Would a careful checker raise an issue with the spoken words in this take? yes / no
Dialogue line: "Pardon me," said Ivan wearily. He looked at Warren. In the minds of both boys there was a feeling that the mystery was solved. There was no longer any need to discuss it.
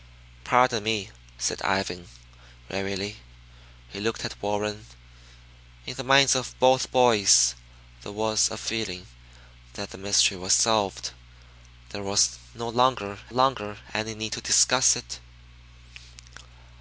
yes